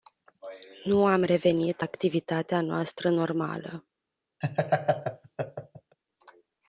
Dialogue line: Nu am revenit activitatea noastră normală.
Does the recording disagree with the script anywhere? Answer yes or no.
no